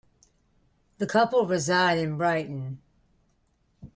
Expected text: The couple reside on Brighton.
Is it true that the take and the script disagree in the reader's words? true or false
true